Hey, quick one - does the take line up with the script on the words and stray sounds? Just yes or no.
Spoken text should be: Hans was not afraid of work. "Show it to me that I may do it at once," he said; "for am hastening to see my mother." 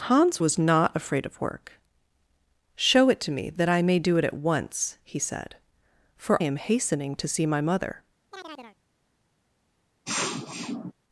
no